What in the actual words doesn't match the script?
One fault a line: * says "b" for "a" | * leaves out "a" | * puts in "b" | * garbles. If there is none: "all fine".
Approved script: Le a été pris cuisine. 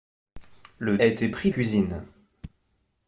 all fine